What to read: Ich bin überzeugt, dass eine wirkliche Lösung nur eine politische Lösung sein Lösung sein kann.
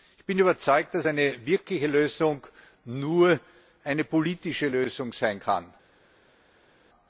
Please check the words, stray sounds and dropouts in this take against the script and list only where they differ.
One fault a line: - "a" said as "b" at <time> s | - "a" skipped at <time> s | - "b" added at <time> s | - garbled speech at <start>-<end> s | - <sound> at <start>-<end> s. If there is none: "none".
- "Lösung sein" skipped at 5.4 s